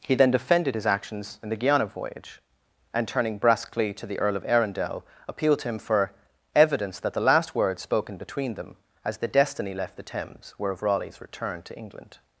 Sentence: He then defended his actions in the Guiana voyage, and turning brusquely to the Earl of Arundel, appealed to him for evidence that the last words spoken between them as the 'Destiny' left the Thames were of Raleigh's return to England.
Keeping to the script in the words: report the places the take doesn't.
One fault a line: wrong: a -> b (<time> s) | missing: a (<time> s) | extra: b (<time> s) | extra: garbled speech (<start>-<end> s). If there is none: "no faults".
no faults